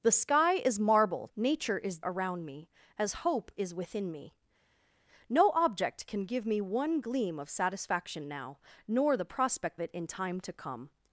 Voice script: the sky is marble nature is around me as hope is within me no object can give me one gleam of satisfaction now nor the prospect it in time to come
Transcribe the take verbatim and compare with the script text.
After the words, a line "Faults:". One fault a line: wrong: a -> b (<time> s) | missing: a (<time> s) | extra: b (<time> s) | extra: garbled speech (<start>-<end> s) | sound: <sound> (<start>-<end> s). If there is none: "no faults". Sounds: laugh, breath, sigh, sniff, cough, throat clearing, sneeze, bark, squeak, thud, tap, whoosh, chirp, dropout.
the sky is marble nature is around me as hope is within me no object can give me one gleam of satisfaction now nor the prospect it in time to come
Faults:
no faults